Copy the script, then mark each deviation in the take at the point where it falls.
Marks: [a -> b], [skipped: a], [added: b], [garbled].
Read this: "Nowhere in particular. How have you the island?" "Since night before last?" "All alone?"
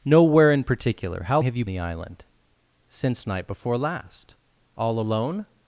"Nowhere in particular. How have you the island?" "Since night before last?" "All alone?"